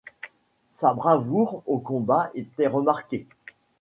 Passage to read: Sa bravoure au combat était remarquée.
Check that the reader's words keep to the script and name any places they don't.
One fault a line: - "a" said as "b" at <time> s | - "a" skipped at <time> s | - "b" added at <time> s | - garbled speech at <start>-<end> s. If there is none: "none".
none